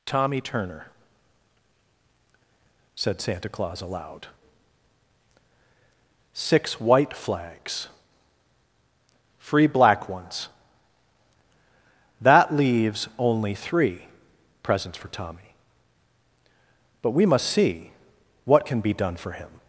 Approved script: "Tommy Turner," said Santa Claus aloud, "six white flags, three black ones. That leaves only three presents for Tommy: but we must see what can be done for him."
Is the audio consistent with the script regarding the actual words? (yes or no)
no